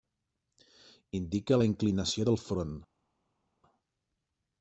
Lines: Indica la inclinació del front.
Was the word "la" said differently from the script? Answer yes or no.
no